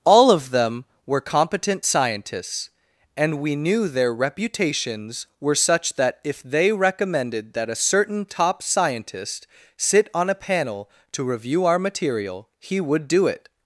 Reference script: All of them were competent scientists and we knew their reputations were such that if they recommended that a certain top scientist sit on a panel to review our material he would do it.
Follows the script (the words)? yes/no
yes